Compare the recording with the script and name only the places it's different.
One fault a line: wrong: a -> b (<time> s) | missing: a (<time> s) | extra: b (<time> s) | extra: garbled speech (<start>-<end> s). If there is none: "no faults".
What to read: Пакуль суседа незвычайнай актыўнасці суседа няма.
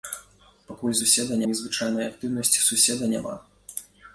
no faults